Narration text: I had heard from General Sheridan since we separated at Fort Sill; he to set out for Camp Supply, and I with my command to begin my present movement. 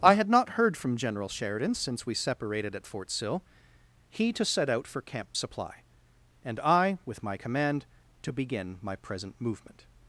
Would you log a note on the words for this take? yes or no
yes